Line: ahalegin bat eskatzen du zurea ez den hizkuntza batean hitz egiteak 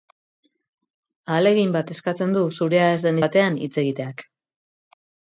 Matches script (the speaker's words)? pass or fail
fail